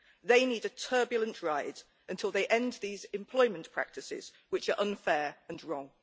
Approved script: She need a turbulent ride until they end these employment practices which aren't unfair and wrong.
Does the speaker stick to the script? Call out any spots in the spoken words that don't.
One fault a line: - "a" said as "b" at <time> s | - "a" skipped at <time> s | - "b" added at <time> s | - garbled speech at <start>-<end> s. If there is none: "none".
- "She" said as "They" at 0.2 s
- "aren't" said as "are" at 4.7 s